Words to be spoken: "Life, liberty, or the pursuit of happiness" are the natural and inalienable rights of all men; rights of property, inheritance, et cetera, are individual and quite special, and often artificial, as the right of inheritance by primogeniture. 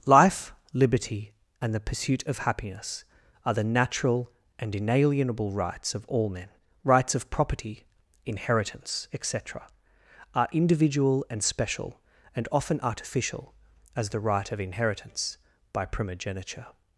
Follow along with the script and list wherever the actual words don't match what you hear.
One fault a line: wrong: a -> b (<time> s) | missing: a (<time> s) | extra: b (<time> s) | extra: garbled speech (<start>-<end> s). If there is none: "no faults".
wrong: or -> and (1.6 s)
missing: quite (11.4 s)